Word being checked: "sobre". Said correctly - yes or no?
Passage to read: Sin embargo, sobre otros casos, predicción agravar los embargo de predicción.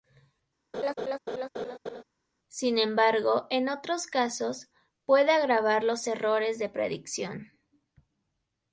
no